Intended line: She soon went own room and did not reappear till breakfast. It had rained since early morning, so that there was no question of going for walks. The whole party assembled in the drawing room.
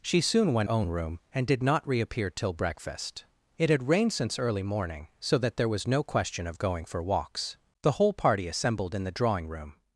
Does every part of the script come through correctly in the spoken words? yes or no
yes